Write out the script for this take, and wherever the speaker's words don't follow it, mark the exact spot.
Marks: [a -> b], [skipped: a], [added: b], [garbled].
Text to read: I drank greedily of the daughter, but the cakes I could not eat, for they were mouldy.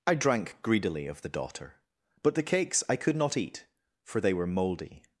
I drank greedily of the daughter, but the cakes I could not eat, for they were mouldy.